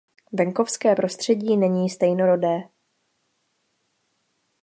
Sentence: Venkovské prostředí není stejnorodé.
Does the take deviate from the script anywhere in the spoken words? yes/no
no